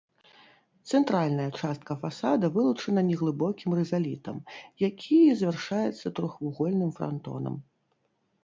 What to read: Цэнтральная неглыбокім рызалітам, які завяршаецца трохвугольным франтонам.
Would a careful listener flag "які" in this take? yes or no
no